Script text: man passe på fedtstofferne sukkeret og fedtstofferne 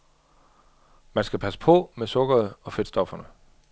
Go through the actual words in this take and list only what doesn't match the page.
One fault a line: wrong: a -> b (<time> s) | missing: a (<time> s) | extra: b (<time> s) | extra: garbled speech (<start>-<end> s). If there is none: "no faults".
extra: skal (1.2 s)
wrong: fedtstofferne -> med (1.9 s)